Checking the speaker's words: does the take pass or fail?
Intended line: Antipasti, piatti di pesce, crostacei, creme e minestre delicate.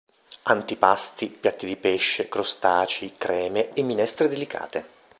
pass